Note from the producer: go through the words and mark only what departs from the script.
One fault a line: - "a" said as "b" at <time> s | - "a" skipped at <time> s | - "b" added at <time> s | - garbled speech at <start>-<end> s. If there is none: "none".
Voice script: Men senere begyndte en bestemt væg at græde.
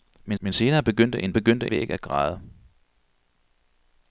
- "men" added at 0.4 s
- "bestemt" said as "begyndte" at 1.3 s